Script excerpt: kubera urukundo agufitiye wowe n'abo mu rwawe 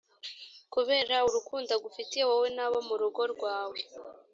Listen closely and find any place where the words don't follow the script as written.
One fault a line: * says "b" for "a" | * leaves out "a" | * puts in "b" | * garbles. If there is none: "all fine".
* puts in "rugo"